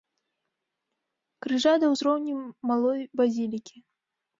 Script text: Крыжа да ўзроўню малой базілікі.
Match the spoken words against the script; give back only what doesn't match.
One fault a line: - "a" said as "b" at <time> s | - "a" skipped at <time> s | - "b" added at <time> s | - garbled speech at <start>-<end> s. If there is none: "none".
none